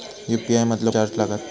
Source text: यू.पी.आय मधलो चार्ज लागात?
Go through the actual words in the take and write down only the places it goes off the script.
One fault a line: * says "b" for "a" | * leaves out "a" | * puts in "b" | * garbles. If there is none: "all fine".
all fine